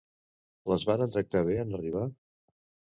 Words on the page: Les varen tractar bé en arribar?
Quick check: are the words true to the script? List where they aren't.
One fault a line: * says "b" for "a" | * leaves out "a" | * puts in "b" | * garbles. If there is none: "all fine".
all fine